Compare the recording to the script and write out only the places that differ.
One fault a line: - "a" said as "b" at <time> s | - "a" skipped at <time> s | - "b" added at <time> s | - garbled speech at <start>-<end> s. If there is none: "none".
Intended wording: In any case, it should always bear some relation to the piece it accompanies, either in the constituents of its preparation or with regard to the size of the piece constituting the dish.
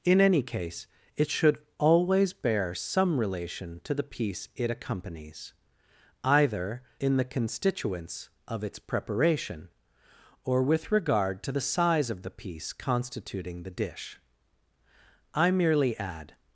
- "I merely add" added at 15.3 s